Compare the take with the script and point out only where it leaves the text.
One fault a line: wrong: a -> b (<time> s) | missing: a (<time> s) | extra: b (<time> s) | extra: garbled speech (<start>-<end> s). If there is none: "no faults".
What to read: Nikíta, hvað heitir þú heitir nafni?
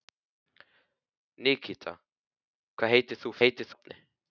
no faults